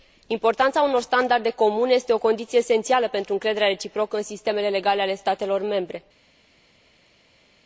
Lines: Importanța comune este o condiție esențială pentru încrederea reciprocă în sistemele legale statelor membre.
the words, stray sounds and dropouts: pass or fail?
fail